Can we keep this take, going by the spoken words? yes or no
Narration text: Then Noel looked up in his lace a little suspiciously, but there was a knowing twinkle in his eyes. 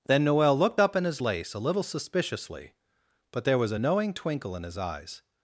yes